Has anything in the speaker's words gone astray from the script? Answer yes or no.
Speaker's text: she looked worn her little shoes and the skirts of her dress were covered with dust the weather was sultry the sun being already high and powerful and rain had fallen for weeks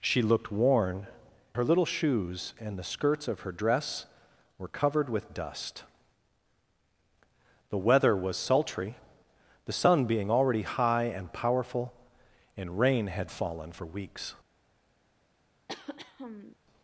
no